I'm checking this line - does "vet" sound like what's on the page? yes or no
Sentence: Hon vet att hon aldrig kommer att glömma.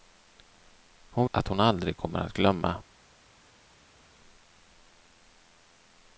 no